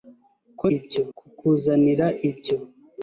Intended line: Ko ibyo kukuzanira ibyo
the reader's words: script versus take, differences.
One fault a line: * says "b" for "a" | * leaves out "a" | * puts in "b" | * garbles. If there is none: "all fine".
all fine